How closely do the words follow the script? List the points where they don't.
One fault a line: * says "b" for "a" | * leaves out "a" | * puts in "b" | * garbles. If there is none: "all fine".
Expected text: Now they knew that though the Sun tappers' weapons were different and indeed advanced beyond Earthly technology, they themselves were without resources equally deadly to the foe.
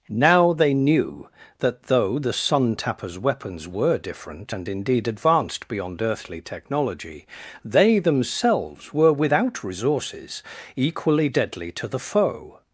all fine